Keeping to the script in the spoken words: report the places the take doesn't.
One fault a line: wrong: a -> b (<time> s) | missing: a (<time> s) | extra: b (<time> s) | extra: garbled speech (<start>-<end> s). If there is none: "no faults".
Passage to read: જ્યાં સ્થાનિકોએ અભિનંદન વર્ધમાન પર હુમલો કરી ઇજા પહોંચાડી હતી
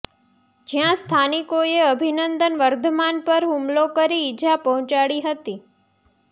no faults